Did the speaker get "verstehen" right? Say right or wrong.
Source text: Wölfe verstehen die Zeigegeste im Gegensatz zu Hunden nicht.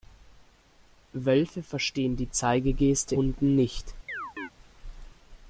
right